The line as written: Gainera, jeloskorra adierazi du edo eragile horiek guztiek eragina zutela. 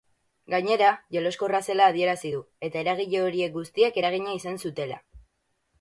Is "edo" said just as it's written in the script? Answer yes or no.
no